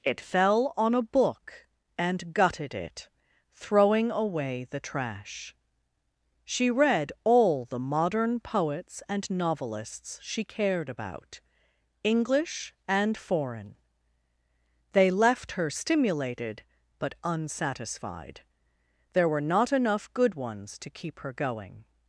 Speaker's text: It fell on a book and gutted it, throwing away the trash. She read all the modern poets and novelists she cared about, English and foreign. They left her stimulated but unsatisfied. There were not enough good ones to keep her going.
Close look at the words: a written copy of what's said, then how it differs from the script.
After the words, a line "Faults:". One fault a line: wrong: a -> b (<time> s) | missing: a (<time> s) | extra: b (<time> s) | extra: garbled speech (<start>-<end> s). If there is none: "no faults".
It fell on a book and gutted it, throwing away the trash. She read all the modern poets and novelists she cared about, English and foreign. They left her stimulated but unsatisfied. There were not enough good ones to keep her going.
Faults:
no faults